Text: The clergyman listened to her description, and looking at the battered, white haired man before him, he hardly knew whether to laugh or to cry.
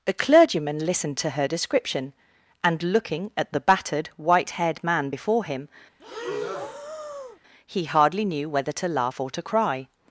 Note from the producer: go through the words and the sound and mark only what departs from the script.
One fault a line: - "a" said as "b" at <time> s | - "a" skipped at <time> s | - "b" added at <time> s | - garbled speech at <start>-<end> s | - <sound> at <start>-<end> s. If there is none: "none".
- "The" said as "A" at 0.1 s
- breath at 6.0-7.4 s